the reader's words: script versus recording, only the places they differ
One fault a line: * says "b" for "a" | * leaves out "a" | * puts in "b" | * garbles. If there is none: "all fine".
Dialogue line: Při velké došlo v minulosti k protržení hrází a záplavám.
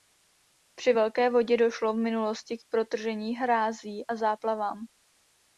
* puts in "vodě"